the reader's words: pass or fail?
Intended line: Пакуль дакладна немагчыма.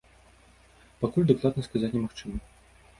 fail